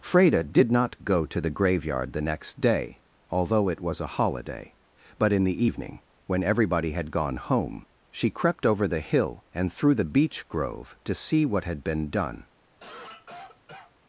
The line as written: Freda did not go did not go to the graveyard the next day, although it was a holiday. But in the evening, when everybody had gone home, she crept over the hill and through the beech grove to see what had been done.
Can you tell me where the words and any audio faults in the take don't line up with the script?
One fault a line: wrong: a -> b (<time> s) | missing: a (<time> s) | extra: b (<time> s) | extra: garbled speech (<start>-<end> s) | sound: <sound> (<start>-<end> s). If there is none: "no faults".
missing: did not go (1.2 s)
sound: cough (12.7-14.0 s)